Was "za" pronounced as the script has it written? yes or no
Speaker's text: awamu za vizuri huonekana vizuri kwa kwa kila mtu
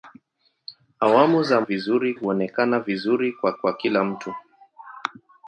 yes